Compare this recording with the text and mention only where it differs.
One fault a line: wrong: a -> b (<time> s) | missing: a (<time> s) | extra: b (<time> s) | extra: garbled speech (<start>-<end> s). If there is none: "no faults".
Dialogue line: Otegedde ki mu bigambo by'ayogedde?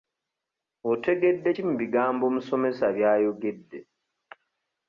extra: omusomesa (2.3 s)